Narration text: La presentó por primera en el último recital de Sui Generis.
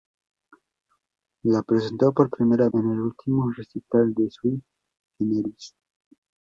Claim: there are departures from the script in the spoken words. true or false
false